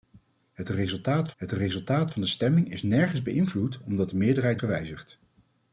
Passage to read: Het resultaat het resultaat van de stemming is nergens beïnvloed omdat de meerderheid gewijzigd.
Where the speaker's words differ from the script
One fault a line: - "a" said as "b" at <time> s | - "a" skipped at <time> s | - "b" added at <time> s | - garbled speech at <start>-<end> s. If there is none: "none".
none